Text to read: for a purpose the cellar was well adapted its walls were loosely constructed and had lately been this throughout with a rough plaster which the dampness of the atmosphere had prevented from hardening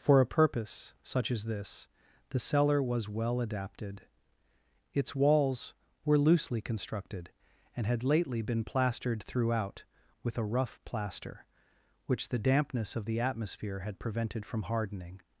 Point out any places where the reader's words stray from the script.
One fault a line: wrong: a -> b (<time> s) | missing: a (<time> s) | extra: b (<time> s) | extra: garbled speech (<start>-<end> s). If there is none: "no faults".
extra: such as this (1.0 s)
wrong: this -> plastered (8.6 s)